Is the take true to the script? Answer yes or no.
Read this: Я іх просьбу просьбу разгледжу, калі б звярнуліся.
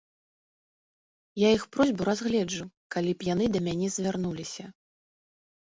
no